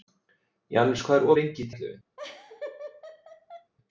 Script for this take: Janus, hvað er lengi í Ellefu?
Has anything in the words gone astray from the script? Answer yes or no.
no